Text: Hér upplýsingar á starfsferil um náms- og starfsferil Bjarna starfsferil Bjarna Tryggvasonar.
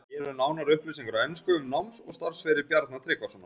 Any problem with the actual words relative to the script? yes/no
yes